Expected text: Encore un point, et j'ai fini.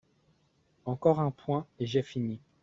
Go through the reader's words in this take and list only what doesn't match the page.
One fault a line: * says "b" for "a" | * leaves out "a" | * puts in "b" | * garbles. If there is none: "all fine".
all fine